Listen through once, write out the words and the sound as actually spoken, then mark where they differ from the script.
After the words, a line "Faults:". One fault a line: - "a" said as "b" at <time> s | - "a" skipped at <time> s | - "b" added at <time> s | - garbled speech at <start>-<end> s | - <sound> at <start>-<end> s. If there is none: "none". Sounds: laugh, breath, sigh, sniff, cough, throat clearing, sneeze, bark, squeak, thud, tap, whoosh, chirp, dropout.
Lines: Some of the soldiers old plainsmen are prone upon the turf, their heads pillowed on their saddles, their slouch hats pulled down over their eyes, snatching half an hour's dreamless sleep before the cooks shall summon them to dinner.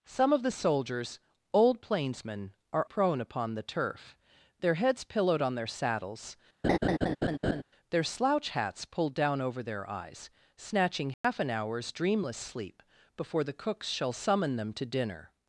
Some of the soldiers old plainsmen are prone upon the turf, their heads pillowed on their saddles, their slouch hats pulled down over their eyes, snatching half an hour's dreamless sleep before the cooks shall summon them to dinner.
Faults:
- laugh at 6.6-7.6 s
- dropout at 11.1-11.2 s